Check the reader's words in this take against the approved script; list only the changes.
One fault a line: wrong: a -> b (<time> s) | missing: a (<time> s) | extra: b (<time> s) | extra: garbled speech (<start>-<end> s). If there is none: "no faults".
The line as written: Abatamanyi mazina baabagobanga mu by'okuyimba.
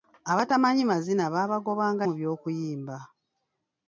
no faults